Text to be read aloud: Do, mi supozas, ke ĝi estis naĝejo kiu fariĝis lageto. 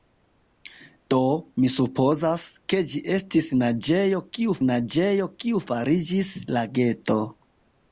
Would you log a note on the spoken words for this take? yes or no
yes